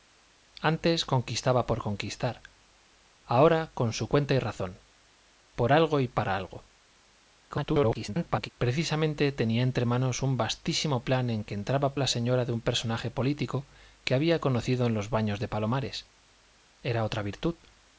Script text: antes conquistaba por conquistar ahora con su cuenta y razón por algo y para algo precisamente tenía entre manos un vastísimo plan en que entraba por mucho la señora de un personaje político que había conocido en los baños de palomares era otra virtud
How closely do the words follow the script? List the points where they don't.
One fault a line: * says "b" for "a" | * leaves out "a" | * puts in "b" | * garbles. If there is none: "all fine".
* garbles
* leaves out "por mucho"